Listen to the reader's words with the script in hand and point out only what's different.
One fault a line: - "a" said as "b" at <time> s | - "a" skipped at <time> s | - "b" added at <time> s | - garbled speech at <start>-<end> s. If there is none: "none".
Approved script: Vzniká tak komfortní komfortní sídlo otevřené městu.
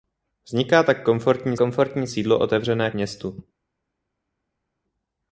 none